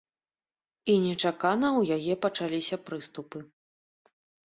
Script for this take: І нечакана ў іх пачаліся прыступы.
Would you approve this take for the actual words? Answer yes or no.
no